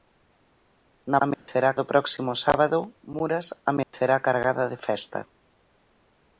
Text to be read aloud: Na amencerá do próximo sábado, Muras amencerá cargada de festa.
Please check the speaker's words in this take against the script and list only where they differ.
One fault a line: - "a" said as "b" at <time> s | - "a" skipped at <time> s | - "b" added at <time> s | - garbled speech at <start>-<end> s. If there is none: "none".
none